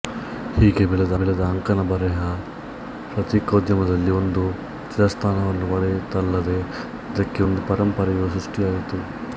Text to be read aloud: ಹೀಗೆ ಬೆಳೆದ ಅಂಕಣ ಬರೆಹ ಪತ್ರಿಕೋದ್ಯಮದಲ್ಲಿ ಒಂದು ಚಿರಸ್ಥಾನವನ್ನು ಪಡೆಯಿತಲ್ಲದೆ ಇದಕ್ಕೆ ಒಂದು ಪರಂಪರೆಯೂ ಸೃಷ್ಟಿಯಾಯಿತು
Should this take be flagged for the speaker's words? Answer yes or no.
yes